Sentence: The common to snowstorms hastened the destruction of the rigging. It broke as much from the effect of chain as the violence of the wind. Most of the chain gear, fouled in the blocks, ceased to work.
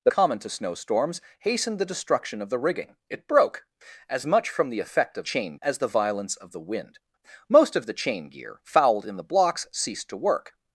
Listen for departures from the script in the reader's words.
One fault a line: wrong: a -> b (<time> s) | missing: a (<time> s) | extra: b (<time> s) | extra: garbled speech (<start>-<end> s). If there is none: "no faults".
no faults